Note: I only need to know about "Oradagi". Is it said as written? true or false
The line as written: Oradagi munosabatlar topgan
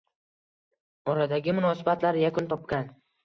true